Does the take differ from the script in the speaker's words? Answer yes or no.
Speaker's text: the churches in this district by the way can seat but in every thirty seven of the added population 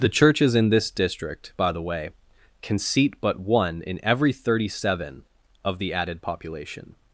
yes